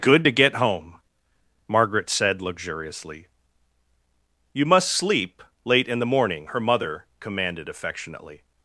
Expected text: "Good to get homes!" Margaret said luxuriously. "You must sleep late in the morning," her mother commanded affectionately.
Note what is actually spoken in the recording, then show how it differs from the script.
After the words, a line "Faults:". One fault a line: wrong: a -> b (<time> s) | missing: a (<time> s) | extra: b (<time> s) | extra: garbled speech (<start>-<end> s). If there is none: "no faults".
"Good to get home!" Margaret said luxuriously. "You must sleep late in the morning," her mother commanded affectionately.
Faults:
wrong: homes -> home (0.5 s)